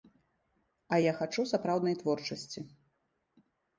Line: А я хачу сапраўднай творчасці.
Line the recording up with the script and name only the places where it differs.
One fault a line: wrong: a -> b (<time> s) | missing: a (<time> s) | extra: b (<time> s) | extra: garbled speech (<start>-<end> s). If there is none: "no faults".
no faults